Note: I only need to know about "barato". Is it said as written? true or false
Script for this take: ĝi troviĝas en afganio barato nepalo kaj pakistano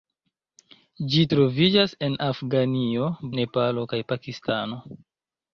false